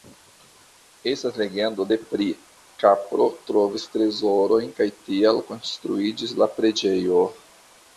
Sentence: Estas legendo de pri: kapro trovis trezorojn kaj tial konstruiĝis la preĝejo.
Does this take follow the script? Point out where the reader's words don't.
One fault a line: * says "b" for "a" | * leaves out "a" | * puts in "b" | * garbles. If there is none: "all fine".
all fine